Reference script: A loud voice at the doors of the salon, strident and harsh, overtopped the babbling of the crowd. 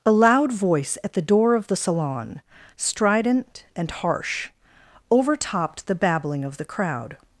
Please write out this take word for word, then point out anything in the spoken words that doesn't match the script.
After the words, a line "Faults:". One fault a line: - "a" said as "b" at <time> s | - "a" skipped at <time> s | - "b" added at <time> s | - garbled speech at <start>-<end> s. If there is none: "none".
A loud voice at the door of the salon, strident and harsh, overtopped the babbling of the crowd.
Faults:
- "doors" said as "door" at 1.2 s